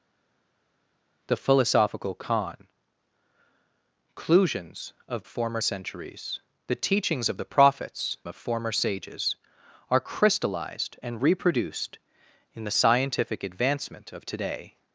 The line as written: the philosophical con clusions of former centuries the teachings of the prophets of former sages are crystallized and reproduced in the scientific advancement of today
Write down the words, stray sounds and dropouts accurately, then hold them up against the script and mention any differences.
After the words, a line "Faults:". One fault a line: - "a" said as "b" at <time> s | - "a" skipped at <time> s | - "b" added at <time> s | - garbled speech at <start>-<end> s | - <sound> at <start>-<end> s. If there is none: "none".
the philosophical con clusions of former centuries the teachings of the prophets of former sages are crystallized and reproduced in the scientific advancement of today
Faults:
none